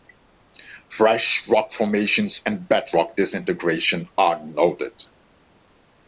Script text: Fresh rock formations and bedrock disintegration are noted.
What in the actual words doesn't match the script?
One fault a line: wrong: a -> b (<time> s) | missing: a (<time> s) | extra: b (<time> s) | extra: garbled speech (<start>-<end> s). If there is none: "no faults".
no faults